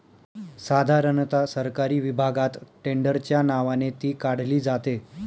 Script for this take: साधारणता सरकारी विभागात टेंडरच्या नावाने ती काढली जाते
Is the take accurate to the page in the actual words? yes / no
yes